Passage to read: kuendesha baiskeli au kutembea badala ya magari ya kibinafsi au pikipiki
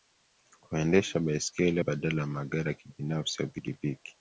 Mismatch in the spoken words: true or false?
true